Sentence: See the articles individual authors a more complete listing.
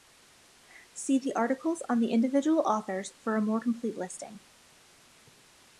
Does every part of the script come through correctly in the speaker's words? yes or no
no